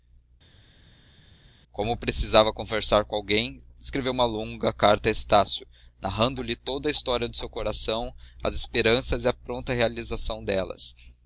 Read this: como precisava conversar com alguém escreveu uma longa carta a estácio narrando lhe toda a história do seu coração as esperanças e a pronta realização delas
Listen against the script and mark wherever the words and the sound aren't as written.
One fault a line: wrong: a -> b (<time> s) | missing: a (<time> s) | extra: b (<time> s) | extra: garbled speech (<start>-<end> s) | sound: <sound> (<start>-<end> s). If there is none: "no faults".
no faults